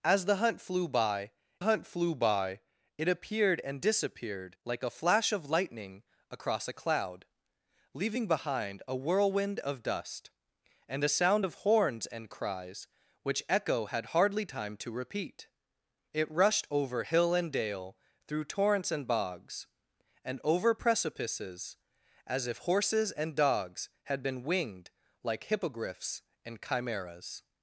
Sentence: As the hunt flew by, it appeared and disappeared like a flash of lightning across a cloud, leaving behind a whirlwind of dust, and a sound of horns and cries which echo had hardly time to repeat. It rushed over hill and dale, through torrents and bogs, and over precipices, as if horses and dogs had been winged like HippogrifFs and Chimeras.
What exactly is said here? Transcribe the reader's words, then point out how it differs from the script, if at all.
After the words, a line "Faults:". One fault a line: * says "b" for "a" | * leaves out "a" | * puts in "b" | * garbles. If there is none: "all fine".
As the hunt flew by hunt flew by, it appeared and disappeared like a flash of lightning across a cloud, leaving behind a whirlwind of dust, and a sound of horns and cries which echo had hardly time to repeat. It rushed over hill and dale, through torrents and bogs, and over precipices, as if horses and dogs had been winged like HippogrifFs and Chimeras.
Faults:
* puts in "hunt flew by"